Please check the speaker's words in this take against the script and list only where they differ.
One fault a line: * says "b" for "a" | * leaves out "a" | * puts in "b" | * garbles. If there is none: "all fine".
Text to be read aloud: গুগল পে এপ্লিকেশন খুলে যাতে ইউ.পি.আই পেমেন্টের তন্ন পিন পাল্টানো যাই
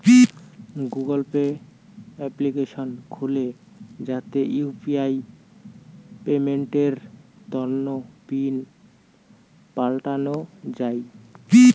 all fine